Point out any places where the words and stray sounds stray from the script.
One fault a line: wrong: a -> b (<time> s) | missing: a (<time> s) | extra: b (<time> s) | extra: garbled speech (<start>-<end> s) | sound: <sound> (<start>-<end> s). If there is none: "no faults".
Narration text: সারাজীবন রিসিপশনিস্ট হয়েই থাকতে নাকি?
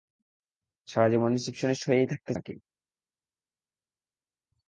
no faults